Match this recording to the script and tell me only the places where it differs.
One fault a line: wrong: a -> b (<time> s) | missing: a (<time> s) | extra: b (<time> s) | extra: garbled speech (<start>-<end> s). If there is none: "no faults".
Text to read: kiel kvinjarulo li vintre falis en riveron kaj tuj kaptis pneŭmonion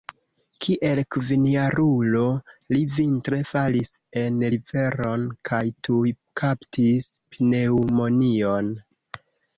no faults